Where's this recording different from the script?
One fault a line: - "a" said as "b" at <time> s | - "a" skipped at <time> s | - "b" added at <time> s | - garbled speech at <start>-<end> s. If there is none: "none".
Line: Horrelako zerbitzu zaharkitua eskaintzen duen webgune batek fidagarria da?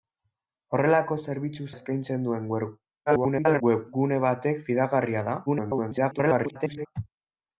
- "zaharkitua" skipped at 1.7 s
- garbled speech at 3.1-3.6 s
- garbled speech at 5.5-6.9 s